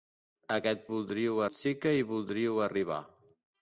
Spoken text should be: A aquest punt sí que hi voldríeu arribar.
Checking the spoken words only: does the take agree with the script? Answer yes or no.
no